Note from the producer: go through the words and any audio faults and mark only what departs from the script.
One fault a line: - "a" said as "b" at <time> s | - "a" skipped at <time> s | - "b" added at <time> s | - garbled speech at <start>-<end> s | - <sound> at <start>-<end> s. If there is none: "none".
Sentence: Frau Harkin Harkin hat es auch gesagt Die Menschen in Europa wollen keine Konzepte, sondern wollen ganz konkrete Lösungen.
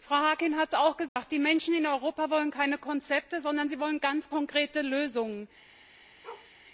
- "Harkin" skipped at 0.6 s
- dropout at 1.1-1.2 s
- "sie" added at 3.7 s
- bark at 6.2-6.5 s